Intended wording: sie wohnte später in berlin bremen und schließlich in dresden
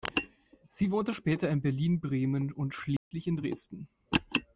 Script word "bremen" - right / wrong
right